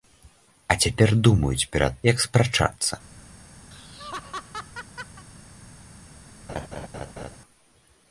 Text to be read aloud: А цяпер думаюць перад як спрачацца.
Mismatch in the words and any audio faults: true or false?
true